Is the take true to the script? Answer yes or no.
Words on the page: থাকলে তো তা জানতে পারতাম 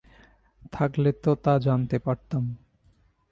yes